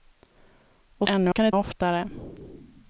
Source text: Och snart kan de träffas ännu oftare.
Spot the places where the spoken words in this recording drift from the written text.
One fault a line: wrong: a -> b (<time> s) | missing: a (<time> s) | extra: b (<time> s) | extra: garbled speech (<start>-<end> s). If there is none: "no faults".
wrong: snart -> ännu (1.1 s)
missing: träffas ännu (1.5 s)